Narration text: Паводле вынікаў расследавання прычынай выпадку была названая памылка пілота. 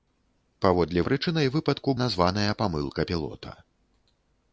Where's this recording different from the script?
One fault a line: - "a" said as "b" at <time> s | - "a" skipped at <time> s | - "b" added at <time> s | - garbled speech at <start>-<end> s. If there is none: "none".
- "вынікаў расследавання" skipped at 1.0 s
- "была" skipped at 1.9 s